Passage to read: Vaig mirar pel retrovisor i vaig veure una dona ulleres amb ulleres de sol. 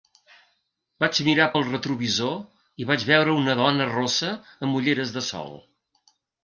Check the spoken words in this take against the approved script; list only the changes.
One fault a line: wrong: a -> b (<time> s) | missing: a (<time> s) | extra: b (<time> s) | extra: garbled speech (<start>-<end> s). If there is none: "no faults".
wrong: ulleres -> rossa (3.9 s)